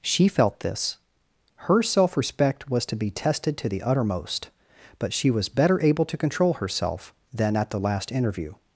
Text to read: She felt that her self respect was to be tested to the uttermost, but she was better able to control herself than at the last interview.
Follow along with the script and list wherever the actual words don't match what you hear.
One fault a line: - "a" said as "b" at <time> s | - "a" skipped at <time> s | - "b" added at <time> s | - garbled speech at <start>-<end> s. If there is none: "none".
- "that" said as "this" at 0.6 s